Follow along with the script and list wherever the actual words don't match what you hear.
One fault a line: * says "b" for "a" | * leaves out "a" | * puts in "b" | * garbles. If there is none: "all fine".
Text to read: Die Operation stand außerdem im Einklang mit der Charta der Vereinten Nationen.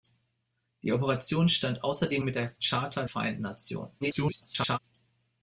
* leaves out "im Einklang"
* leaves out "der"
* garbles